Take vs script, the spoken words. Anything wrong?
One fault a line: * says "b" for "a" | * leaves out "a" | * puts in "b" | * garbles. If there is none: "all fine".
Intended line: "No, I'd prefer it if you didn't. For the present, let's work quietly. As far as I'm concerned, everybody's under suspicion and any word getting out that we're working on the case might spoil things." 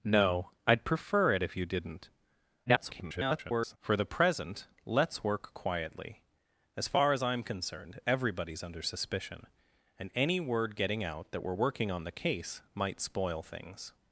* garbles